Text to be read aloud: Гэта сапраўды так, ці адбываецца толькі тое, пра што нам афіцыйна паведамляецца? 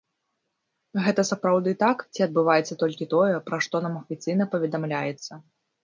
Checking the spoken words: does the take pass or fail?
pass